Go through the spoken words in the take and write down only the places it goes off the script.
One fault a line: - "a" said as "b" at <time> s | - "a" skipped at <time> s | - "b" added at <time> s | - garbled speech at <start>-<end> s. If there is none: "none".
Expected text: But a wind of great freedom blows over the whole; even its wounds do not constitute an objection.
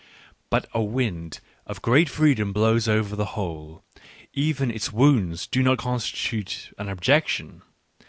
none